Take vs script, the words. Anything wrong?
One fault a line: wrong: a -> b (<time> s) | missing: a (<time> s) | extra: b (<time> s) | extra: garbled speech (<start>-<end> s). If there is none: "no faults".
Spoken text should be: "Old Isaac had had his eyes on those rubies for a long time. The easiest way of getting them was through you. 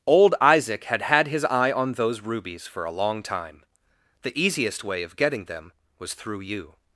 wrong: eyes -> eye (1.4 s)